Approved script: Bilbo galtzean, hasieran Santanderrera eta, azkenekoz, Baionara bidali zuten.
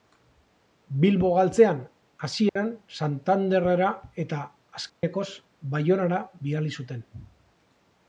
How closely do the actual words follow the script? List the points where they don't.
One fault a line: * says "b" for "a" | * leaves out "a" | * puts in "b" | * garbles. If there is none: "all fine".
all fine